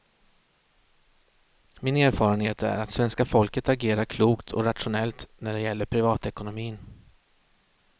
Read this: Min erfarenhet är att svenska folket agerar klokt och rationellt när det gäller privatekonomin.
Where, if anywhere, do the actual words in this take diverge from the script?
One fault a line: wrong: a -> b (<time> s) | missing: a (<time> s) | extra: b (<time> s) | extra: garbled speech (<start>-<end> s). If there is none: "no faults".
no faults